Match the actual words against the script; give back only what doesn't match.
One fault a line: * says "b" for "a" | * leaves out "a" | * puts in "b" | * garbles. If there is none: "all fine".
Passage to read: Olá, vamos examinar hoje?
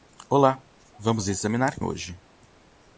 all fine